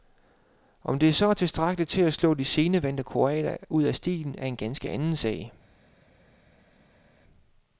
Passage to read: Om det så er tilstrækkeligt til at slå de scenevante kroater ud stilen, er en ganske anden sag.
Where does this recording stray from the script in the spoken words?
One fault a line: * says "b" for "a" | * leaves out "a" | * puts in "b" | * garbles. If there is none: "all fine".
* puts in "af"